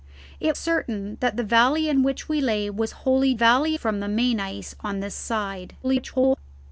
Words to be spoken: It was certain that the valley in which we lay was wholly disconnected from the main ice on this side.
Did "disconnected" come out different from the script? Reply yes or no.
yes